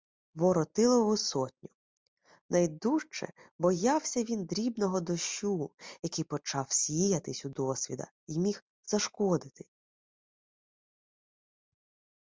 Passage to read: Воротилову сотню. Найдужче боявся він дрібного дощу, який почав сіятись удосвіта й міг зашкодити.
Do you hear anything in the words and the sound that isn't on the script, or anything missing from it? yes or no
no